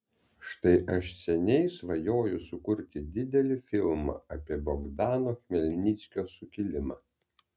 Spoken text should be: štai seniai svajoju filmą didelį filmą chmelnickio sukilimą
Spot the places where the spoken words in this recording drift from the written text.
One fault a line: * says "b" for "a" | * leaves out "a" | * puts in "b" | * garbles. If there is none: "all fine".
* puts in "aš"
* says "sukurti" for "filmą"
* puts in "apie bogdano"